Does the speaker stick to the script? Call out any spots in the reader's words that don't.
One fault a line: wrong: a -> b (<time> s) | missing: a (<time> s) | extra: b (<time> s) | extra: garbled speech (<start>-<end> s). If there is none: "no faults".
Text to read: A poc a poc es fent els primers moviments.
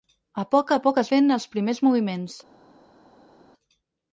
no faults